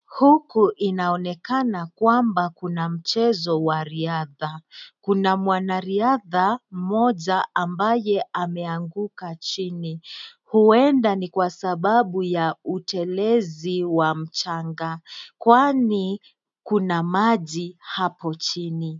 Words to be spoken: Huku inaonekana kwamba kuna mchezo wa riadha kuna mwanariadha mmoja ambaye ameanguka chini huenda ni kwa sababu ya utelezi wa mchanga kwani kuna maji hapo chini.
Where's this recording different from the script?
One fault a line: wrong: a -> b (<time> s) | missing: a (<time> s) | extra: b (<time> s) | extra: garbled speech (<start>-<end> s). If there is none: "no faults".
no faults